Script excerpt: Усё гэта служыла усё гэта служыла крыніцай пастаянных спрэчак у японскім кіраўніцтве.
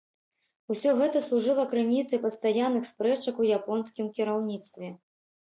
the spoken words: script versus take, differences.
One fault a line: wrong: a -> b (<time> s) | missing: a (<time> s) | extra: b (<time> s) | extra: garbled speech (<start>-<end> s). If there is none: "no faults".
missing: усё гэта служыла (1.6 s)